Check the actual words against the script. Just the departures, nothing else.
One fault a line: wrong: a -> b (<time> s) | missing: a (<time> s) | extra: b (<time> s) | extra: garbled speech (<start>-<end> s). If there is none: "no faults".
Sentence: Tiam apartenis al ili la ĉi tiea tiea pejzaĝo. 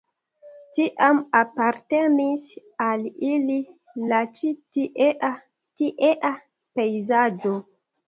no faults